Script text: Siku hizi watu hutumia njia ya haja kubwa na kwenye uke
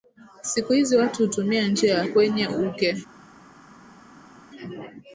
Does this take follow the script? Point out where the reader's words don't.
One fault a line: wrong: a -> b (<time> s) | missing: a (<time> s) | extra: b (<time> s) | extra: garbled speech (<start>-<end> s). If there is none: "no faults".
missing: haja kubwa na (2.0 s)